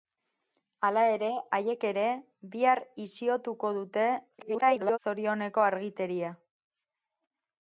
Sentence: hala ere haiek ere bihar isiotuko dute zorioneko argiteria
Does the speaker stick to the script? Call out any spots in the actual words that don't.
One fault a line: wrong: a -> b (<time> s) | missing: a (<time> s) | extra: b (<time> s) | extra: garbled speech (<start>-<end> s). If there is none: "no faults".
extra: garbled speech (4.4-5.0 s)